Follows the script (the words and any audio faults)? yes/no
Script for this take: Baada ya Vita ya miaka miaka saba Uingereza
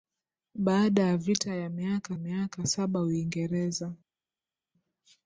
yes